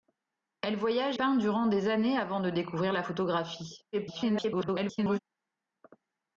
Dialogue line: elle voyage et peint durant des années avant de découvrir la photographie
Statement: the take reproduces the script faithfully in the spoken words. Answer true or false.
false